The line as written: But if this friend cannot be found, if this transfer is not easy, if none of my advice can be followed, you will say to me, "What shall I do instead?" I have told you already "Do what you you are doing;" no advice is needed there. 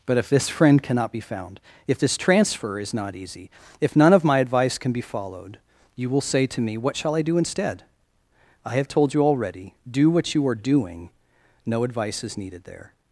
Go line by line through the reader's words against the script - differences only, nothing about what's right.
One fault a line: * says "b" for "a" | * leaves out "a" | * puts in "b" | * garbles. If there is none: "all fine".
* leaves out "you"